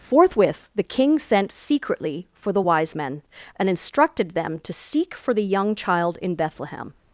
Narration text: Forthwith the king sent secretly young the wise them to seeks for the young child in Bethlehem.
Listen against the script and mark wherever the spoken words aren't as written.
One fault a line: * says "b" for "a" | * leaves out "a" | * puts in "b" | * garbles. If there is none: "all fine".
* says "for" for "young"
* puts in "men and instructed"
* says "seek" for "seeks"